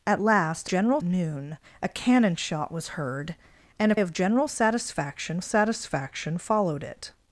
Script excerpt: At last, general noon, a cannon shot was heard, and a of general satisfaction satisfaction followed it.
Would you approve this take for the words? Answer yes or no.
yes